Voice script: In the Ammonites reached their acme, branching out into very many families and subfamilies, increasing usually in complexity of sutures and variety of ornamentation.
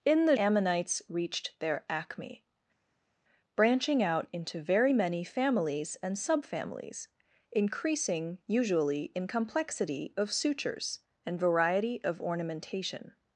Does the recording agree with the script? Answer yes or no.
yes